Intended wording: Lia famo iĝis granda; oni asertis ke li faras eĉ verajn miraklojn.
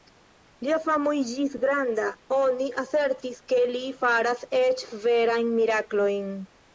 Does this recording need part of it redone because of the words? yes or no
no